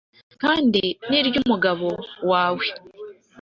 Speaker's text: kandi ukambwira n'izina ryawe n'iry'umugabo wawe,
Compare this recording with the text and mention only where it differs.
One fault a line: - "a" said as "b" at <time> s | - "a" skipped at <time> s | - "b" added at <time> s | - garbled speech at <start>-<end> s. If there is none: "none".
- "ukambwira n'izina ryawe" skipped at 0.8 s